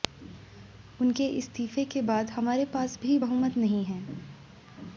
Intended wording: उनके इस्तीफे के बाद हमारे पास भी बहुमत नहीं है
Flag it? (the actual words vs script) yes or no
no